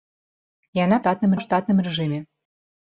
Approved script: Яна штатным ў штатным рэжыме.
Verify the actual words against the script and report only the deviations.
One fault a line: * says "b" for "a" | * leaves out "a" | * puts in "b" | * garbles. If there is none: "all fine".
all fine